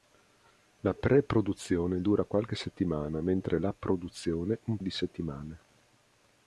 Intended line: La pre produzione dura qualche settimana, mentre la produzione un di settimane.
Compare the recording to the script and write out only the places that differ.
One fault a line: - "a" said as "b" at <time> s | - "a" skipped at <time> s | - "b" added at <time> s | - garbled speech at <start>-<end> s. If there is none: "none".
none